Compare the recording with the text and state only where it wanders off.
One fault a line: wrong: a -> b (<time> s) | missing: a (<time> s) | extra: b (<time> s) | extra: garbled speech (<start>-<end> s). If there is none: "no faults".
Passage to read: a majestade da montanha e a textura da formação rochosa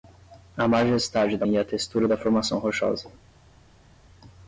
missing: montanha (1.4 s)